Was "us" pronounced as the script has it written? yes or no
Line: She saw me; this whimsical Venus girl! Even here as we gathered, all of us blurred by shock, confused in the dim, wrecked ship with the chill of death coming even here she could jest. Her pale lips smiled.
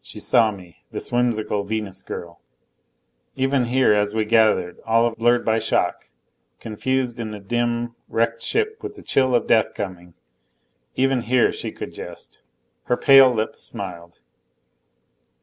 no